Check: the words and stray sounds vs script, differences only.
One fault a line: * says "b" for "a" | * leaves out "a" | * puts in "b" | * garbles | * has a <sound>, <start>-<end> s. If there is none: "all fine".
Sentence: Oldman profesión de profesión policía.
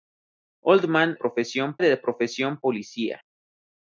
all fine